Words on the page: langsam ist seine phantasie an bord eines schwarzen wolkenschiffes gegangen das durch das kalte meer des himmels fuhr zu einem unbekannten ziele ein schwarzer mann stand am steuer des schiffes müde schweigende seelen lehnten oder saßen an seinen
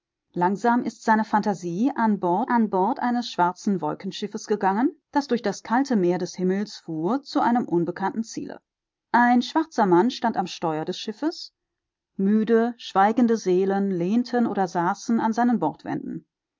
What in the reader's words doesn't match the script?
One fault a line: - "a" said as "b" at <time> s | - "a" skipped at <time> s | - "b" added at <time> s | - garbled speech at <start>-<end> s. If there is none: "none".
- "an bord" added at 2.5 s